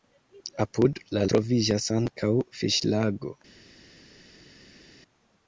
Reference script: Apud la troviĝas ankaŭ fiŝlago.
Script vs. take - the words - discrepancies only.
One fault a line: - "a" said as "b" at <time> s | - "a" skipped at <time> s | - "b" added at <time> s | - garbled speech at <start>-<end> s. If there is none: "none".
none